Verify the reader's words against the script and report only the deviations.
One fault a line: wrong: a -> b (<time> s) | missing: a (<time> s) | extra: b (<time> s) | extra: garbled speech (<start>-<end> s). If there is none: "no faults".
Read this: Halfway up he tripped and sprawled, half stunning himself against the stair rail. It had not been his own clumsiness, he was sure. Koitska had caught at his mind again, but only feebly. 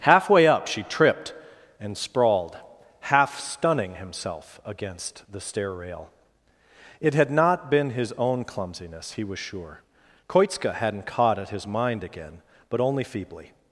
wrong: he -> she (0.7 s)
wrong: had -> hadn't (10.7 s)